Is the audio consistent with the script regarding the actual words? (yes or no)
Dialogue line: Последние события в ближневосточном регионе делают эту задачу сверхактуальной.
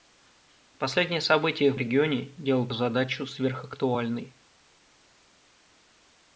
no